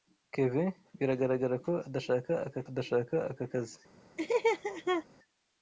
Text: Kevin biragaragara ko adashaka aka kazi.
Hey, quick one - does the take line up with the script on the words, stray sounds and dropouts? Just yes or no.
no